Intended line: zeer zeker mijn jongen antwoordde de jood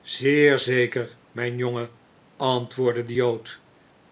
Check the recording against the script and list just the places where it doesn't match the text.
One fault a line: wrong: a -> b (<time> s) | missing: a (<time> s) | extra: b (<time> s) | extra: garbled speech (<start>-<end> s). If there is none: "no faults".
no faults